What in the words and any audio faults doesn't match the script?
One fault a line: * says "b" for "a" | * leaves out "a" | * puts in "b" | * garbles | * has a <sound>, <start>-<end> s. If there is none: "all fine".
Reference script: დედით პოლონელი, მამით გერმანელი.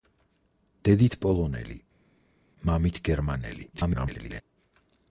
* garbles